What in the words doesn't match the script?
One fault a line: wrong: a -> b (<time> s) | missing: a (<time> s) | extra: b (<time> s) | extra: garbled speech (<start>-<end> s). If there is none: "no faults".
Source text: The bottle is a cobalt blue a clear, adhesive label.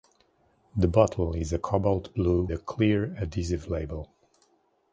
no faults